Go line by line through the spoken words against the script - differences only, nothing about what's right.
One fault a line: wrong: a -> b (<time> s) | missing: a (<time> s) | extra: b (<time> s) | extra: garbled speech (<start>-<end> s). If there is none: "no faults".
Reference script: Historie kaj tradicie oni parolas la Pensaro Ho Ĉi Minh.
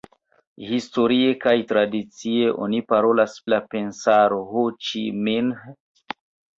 no faults